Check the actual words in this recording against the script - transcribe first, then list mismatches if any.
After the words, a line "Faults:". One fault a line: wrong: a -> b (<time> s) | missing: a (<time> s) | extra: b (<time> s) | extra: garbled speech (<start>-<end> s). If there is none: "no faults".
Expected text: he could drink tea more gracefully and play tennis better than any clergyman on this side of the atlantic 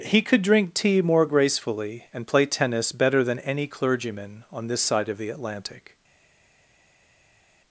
he could drink tea more gracefully and play tennis better than any clergyman on this side of the atlantic
Faults:
no faults